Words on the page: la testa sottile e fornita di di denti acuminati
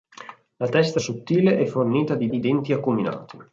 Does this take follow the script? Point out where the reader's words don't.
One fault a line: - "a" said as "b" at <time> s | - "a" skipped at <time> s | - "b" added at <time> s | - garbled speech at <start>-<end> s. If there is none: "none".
none